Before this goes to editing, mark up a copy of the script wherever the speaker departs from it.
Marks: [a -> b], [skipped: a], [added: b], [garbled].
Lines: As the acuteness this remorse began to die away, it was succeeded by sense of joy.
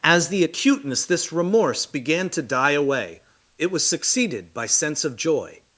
As the acuteness this remorse began to die away, it was succeeded by sense of joy.